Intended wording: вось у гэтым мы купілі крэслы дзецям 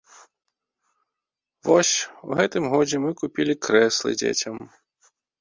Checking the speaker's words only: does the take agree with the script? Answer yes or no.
no